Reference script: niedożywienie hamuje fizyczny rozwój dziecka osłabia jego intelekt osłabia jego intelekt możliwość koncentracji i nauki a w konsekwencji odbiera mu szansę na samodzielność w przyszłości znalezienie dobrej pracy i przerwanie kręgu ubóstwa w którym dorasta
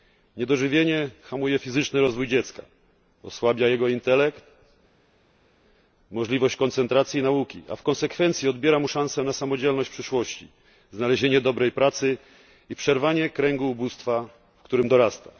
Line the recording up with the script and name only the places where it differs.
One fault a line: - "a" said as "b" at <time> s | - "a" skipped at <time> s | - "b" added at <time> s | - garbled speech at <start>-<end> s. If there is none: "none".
- "osłabia jego intelekt" skipped at 4.4 s